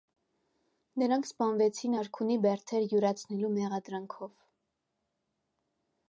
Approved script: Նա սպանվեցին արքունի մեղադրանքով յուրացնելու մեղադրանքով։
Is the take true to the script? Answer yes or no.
no